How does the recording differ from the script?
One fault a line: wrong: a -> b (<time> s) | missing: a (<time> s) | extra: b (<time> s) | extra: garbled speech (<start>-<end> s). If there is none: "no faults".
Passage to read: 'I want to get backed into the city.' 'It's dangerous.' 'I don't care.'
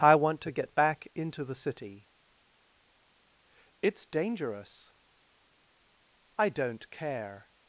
wrong: backed -> back (0.7 s)